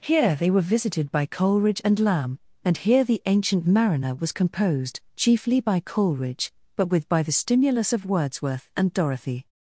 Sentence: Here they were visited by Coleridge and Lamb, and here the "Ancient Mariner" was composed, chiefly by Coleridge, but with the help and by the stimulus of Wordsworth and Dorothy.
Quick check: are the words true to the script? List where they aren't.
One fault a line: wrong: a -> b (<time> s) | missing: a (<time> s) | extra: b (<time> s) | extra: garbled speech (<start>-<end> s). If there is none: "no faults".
missing: the help and (7.1 s)